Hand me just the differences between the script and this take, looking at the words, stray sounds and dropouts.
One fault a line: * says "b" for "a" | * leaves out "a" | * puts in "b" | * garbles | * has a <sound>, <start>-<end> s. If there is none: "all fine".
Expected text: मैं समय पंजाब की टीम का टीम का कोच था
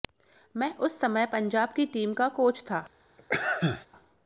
* puts in "उस"
* leaves out "टीम का"
* has a sneeze, 3.2-3.9 s